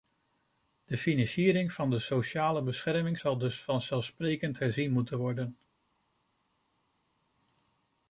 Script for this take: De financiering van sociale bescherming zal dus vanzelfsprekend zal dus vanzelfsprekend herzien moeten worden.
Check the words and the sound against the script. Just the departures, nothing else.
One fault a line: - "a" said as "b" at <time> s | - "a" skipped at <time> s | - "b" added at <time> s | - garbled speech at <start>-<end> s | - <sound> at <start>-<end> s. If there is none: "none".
- "de" added at 1.9 s
- "zal dus vanzelfsprekend" skipped at 4.6 s